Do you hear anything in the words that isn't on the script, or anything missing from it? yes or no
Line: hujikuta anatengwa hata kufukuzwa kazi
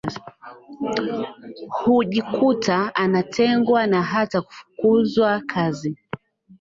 yes